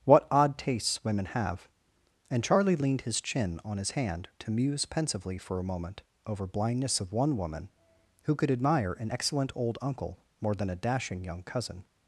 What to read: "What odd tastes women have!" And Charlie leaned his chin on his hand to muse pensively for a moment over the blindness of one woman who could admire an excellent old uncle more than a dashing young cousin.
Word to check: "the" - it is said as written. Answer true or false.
false